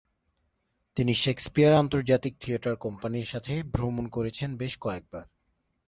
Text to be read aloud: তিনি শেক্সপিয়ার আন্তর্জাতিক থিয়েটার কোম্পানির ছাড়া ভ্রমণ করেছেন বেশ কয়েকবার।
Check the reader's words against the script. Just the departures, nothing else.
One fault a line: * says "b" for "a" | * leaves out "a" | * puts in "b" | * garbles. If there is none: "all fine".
* says "সাথে" for "ছাড়া"